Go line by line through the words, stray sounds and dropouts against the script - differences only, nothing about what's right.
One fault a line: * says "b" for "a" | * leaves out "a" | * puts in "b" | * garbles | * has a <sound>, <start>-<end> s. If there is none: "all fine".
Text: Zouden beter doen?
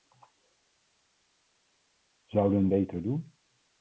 all fine